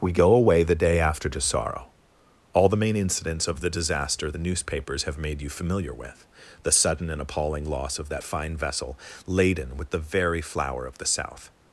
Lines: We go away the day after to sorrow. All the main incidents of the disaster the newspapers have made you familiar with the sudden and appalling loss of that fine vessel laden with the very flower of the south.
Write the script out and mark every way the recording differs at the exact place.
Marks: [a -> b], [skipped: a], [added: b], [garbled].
We go away the day after to sorrow. All the main incidents of the disaster the newspapers have made you familiar with the sudden and appalling loss of that fine vessel laden with the very flower of the south.